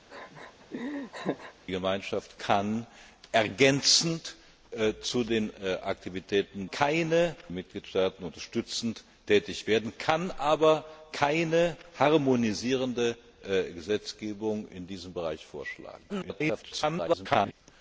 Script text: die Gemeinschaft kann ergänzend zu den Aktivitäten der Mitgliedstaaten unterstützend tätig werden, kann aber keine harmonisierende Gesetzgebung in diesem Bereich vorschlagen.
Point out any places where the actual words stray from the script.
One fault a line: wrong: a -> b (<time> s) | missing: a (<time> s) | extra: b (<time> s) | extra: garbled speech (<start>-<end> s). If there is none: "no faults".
wrong: der -> keine (6.7 s)
extra: garbled speech (16.1-17.5 s)